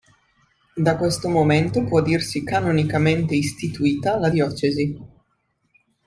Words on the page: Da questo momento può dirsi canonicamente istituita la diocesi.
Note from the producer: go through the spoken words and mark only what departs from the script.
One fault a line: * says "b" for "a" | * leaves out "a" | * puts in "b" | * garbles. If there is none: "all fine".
all fine